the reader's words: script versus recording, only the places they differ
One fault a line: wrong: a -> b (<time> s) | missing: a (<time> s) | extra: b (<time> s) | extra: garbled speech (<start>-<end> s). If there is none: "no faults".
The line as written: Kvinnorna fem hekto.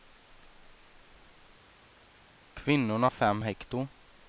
no faults